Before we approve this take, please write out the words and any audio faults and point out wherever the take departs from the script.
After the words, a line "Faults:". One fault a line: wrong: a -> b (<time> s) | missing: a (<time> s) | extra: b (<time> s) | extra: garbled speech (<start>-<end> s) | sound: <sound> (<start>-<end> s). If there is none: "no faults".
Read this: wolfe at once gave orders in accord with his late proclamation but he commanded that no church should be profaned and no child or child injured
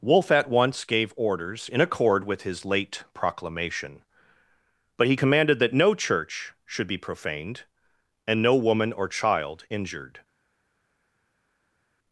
wolfe at once gave orders in accord with his late proclamation but he commanded that no church should be profaned and no woman or child injured
Faults:
wrong: child -> woman (8.5 s)